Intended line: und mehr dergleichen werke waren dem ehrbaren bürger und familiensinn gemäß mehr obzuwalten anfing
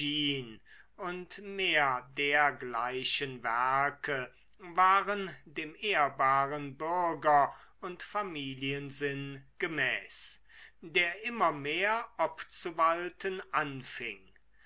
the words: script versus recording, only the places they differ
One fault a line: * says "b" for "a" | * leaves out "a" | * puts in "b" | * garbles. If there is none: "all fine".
* puts in "der immer"